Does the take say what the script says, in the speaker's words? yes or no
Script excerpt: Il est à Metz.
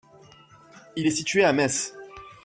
no